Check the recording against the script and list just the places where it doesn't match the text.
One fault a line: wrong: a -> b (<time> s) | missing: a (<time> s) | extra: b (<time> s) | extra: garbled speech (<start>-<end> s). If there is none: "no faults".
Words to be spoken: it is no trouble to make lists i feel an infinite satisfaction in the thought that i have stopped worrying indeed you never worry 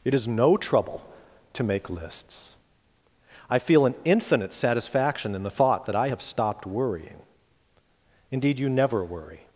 no faults